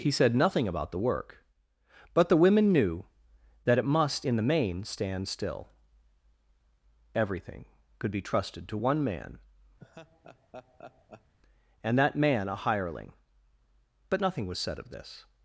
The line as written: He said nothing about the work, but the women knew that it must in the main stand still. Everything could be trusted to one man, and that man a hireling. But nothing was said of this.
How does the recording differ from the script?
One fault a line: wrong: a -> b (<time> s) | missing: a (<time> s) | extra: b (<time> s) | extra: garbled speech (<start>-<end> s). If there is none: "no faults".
no faults